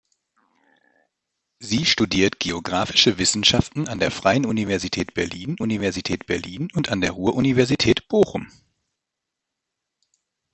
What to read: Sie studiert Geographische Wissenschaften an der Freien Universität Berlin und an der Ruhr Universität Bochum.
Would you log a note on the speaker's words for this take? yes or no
yes